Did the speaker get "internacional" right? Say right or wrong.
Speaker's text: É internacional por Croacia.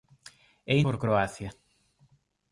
wrong